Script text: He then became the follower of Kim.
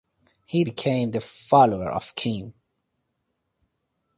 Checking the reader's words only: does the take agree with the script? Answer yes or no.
no